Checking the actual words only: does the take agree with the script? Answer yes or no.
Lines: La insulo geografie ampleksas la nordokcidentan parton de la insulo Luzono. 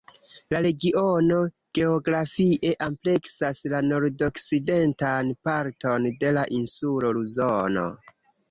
no